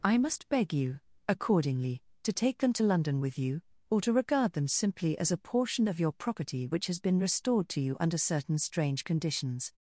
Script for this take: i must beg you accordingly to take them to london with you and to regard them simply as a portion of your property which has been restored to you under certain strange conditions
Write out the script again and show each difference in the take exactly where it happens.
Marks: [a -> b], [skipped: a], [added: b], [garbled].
i must beg you accordingly to take them to london with you [and -> or] to regard them simply as a portion of your property which has been restored to you under certain strange conditions